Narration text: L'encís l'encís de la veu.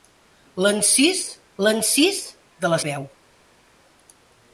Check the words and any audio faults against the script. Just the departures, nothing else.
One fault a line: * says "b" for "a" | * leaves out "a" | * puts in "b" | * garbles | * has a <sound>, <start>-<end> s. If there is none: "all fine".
all fine